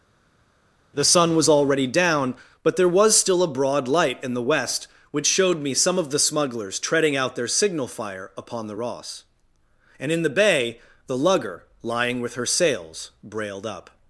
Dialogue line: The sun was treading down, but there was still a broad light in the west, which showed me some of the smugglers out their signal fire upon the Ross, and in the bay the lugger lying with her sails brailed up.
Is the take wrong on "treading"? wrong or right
wrong